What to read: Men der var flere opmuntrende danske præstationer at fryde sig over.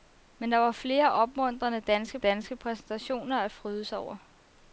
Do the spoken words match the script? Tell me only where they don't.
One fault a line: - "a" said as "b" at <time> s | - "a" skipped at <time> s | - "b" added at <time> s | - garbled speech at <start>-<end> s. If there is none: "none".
- "danske" added at 2.2 s